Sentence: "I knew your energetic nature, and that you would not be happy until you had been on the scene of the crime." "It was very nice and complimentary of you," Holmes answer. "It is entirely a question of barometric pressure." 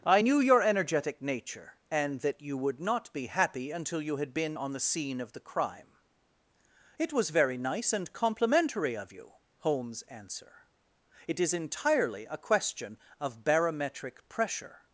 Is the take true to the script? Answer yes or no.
yes